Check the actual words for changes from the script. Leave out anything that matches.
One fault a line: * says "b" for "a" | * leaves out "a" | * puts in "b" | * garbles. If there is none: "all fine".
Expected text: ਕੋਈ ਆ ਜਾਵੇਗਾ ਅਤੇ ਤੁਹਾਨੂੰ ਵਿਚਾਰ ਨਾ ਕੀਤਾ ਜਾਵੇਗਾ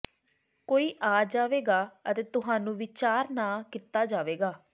all fine